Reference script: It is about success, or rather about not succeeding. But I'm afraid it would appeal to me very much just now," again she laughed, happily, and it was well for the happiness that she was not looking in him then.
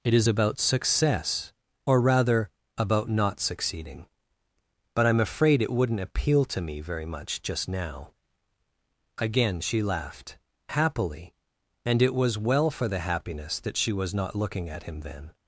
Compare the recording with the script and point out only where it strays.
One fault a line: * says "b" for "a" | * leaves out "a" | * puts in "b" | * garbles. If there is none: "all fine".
* says "wouldn't" for "would"
* says "at" for "in"